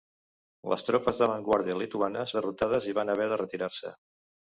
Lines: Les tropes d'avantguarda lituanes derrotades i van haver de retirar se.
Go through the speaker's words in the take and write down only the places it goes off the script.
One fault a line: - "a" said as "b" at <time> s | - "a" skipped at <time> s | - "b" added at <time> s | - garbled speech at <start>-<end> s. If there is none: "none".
none